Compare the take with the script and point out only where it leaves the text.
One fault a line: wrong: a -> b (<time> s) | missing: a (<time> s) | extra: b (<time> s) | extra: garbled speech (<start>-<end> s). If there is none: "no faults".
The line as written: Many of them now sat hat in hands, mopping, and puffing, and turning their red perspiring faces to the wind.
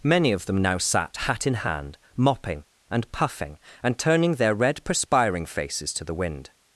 wrong: hands -> hand (1.6 s)